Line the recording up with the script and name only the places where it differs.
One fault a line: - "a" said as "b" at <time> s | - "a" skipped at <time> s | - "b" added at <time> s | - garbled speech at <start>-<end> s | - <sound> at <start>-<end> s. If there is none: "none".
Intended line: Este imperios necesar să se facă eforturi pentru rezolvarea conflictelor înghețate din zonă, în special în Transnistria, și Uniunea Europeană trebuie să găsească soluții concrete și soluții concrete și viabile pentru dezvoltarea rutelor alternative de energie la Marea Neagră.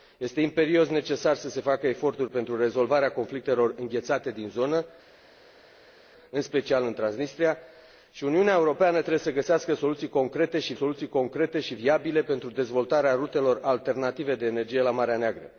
none